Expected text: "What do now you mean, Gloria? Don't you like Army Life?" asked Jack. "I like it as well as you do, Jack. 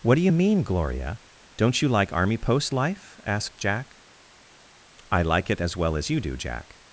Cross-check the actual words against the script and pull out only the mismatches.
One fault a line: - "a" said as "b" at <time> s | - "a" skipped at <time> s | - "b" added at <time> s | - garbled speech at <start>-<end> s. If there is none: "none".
- "now" skipped at 0.2 s
- "Post" added at 2.4 s